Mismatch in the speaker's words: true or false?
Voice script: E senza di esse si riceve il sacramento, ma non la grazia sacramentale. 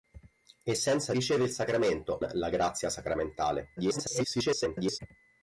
true